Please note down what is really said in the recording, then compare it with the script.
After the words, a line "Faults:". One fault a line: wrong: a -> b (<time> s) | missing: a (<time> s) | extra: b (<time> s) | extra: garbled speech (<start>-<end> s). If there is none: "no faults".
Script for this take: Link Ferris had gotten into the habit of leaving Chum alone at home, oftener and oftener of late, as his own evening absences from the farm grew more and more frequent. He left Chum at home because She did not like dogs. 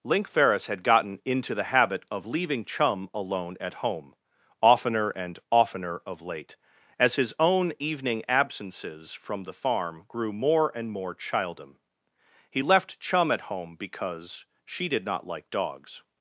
Link Ferris had gotten into the habit of leaving Chum alone at home, oftener and oftener of late, as his own evening absences from the farm grew more and more childem. He left Chum at home because She did not like dogs.
Faults:
wrong: frequent -> childem (11.1 s)